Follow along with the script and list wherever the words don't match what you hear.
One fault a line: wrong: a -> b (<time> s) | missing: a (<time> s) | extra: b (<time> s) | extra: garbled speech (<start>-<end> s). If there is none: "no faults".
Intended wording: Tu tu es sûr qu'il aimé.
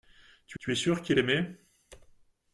no faults